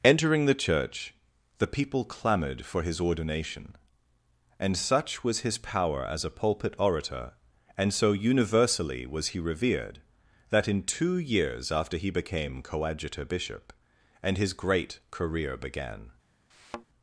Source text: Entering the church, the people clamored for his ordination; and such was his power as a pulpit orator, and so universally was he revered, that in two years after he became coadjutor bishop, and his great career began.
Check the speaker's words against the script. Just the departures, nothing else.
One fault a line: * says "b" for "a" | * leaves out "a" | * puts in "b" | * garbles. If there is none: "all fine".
all fine